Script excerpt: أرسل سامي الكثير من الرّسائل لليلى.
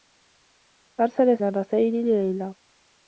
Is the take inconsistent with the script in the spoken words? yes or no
yes